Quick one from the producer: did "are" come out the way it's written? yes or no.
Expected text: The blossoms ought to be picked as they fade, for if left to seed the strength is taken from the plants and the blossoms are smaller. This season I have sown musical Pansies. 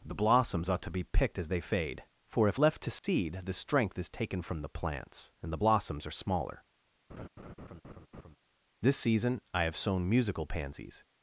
yes